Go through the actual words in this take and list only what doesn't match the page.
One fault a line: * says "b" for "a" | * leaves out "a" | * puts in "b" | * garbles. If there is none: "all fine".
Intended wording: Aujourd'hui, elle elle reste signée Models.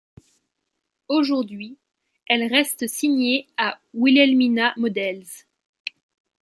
* leaves out "elle"
* puts in "à Wilhelmina"